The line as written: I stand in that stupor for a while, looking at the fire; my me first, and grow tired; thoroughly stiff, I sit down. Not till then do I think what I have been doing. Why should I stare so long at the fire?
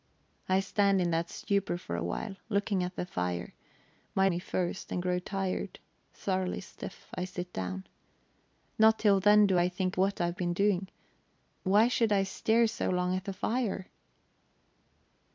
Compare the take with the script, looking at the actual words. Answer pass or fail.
pass